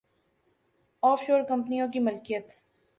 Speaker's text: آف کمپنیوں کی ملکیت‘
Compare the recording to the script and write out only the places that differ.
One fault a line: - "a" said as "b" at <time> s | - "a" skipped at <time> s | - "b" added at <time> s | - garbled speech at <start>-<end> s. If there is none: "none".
- "شور" added at 1.3 s